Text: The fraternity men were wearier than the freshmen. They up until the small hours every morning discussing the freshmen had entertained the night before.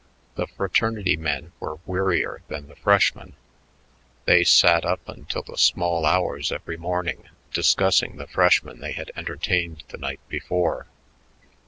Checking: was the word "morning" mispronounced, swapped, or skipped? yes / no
no